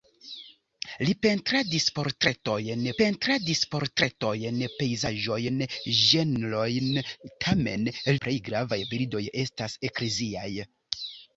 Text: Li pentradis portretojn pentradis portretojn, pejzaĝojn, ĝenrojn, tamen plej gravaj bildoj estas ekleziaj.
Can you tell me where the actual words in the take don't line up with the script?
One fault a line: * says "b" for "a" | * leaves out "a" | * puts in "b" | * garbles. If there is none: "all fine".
all fine